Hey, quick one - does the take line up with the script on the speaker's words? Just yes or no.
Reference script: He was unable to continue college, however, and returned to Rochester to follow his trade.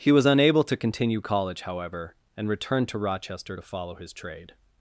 yes